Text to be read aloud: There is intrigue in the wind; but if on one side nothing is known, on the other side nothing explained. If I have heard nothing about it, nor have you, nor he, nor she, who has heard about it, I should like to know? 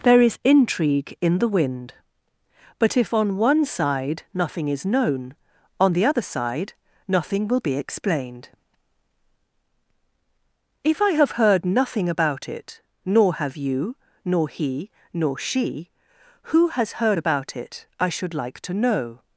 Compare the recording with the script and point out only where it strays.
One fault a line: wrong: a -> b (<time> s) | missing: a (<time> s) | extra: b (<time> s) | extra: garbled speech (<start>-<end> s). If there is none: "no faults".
extra: will be (7.5 s)